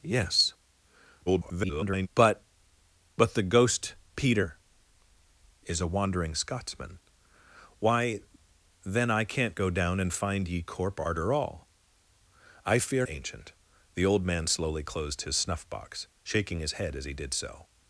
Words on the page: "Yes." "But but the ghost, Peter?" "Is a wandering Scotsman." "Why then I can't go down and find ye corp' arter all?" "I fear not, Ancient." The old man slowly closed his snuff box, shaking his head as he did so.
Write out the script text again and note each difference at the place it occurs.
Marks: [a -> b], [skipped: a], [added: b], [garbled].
"Yes." [garbled] "But but the ghost, Peter?" "Is a wandering Scotsman." "Why then I can't go down and find ye corp' arter all?" "I fear [skipped: not,] Ancient." The old man slowly closed his snuff box, shaking his head as he did so.